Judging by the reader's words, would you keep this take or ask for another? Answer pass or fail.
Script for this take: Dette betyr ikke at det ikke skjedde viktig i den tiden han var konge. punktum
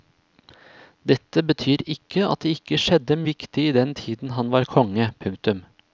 pass